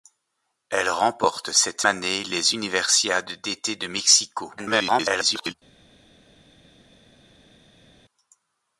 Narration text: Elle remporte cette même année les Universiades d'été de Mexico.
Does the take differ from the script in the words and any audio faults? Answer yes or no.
yes